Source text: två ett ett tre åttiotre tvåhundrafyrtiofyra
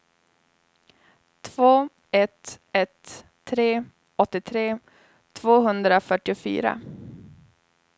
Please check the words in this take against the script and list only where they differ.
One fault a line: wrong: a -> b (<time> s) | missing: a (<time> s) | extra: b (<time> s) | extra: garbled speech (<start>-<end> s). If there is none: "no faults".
no faults